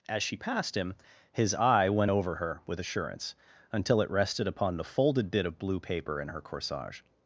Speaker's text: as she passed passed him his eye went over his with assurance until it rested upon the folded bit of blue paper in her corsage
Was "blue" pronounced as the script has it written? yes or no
yes